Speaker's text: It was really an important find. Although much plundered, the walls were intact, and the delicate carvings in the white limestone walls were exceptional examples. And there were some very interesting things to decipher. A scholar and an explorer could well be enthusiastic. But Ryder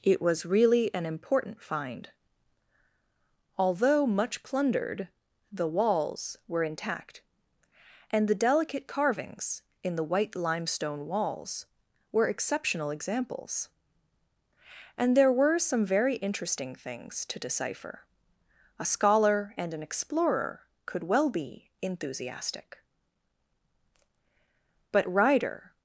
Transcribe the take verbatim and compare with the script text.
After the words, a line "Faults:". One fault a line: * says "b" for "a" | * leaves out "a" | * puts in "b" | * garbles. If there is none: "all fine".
It was really an important find. Although much plundered, the walls were intact, and the delicate carvings in the white limestone walls were exceptional examples. And there were some very interesting things to decipher. A scholar and an explorer could well be enthusiastic. But Ryder
Faults:
all fine